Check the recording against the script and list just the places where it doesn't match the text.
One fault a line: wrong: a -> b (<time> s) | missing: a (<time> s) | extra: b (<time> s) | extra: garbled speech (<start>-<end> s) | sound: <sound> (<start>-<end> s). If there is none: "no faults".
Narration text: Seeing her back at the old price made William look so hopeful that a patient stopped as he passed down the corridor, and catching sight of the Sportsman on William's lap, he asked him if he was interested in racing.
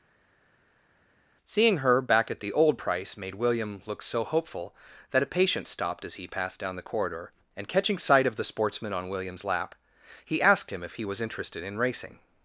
no faults